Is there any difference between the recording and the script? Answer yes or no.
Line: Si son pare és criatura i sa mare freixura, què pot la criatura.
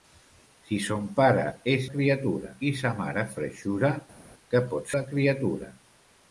no